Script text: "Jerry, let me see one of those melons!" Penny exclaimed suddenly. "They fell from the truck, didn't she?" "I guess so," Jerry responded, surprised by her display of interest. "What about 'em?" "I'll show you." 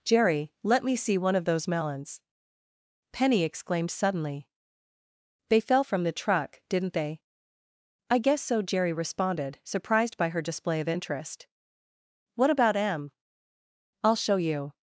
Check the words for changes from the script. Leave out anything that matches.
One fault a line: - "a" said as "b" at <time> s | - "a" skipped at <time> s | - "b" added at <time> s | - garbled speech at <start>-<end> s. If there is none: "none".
- "she" said as "they" at 6.9 s